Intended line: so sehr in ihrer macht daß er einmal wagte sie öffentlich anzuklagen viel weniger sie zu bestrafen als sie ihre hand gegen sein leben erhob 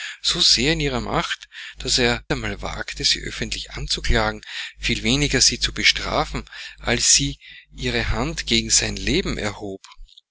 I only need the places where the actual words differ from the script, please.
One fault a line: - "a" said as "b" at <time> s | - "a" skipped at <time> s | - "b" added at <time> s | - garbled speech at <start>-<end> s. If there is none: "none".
none